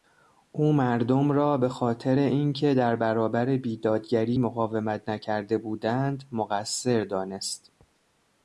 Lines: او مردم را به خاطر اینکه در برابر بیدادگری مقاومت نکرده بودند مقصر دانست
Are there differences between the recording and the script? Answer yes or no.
no